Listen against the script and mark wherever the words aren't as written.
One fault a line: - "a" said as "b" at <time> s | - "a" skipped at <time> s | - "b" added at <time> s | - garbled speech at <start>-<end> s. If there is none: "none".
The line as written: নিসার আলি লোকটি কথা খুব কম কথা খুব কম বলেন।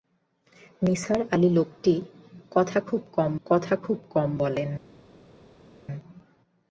none